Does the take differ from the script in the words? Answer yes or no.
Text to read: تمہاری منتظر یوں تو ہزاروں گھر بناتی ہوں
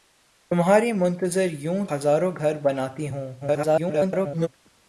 yes